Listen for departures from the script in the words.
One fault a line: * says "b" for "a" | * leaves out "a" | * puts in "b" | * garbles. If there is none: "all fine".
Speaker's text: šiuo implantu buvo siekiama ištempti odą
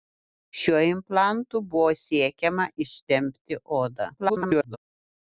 * garbles